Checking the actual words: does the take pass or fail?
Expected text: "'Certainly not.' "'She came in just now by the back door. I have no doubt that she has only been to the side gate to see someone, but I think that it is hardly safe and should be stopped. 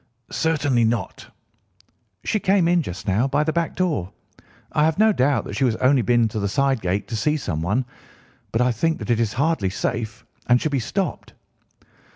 pass